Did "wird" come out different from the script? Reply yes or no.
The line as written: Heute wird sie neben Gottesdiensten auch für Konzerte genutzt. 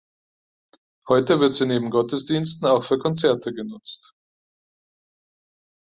no